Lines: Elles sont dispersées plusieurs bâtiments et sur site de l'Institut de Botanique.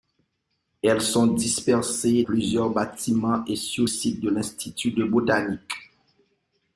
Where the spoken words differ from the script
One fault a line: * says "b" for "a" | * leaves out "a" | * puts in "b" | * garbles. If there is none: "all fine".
all fine